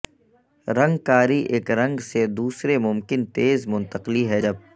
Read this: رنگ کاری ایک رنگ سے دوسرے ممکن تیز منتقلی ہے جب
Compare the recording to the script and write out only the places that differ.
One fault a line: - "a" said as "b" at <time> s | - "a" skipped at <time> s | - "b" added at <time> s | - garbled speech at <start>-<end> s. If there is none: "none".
none